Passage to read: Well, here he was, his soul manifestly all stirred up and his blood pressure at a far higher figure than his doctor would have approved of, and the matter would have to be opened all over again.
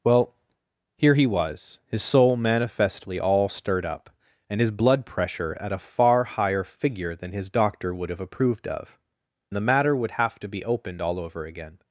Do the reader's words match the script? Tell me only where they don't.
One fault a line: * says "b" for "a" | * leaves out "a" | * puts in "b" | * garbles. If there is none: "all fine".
* leaves out "and"